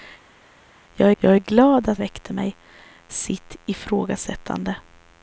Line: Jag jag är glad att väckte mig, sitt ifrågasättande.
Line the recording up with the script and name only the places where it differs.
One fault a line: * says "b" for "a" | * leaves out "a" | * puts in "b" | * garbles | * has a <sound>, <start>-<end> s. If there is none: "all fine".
all fine